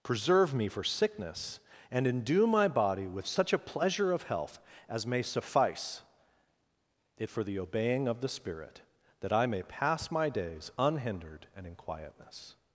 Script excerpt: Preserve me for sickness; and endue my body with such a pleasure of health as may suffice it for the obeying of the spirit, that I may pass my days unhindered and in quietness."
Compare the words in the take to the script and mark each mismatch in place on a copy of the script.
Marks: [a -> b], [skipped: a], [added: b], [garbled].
Preserve me for sickness; and endue my body with such a pleasure of health as may suffice it for the obeying of the spirit, that I may pass my days unhindered and in quietness."